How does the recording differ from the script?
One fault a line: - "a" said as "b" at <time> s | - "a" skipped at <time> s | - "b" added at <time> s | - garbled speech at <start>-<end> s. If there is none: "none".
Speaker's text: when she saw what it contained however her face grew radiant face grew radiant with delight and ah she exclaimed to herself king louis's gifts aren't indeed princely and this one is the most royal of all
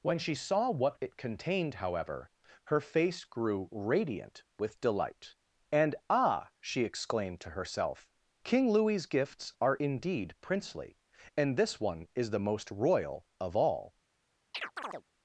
- "face grew radiant" skipped at 4.4 s
- "aren't" said as "are" at 9.6 s